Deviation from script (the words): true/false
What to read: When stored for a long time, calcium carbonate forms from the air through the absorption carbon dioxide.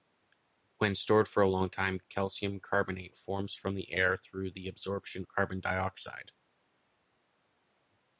false